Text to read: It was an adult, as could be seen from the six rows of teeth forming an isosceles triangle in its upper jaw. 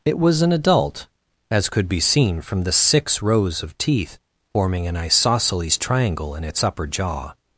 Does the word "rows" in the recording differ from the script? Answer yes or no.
no